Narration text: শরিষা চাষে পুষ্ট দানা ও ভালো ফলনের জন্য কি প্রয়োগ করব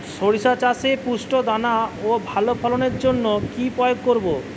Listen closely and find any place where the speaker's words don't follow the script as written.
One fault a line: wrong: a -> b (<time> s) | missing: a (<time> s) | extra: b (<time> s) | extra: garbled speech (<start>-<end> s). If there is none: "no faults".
no faults